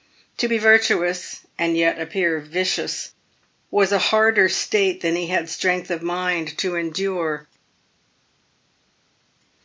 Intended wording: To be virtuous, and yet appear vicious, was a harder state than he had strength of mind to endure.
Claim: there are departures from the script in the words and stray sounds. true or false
false